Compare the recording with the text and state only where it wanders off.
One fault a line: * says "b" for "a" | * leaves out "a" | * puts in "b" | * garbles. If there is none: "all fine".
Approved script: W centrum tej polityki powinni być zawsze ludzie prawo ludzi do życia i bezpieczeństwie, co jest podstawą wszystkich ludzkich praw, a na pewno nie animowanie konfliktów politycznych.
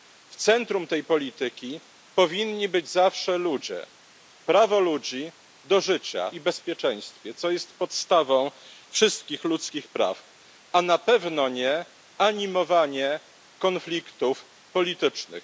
all fine